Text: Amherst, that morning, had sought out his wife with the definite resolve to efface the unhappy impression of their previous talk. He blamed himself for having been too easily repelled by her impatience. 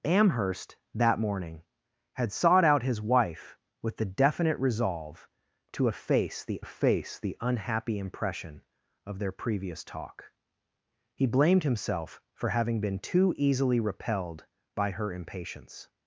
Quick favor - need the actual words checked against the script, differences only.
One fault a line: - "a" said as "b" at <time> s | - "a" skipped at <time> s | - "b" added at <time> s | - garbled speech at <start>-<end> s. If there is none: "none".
- "efface the" added at 6.6 s